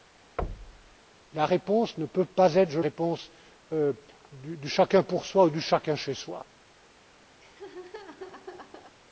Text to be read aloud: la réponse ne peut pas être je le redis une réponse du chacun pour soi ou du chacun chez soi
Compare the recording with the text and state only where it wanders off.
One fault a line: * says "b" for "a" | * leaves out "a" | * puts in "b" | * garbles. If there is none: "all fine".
* leaves out "le redis une"